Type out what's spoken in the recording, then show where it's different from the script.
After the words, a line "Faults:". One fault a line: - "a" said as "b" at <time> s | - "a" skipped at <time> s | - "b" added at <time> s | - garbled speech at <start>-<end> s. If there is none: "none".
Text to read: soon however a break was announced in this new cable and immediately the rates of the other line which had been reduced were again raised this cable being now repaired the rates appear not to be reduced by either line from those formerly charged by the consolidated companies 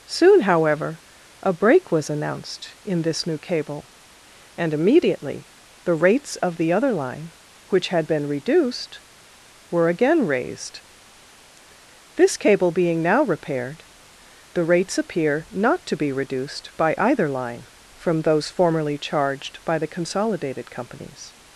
soon however a break was announced in this new cable and immediately the rates of the other line which had been reduced were again raised this cable being now repaired the rates appear not to be reduced by either line from those formerly charged by the consolidated companies
Faults:
none